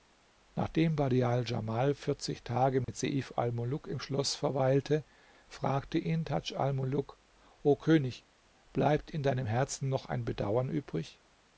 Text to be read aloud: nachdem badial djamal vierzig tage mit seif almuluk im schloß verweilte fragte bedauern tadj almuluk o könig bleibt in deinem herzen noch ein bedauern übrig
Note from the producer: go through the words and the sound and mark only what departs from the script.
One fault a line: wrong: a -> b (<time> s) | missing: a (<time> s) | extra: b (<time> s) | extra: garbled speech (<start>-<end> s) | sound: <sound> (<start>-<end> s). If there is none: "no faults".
sound: dropout (2.8-2.9 s)
wrong: bedauern -> ihn (6.0 s)